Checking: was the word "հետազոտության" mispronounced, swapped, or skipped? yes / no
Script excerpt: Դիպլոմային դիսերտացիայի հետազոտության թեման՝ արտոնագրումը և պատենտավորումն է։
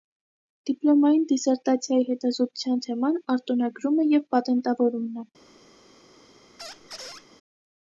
no